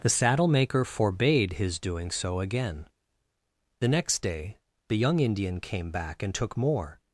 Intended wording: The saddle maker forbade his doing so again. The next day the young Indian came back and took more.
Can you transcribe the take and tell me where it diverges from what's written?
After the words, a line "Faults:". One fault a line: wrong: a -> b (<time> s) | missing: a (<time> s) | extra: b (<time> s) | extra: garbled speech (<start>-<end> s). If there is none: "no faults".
The saddle maker forbade his doing so again. The next day the young Indian came back and took more.
Faults:
no faults